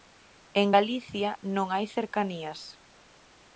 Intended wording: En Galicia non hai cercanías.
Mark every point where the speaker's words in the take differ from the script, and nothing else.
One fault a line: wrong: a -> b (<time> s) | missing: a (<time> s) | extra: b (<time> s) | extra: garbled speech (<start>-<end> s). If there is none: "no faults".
no faults